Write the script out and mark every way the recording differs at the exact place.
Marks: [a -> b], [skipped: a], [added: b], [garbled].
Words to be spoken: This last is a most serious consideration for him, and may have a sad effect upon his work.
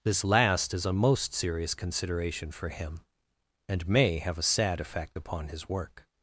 This last is a most serious consideration for him, and may have a sad effect upon his work.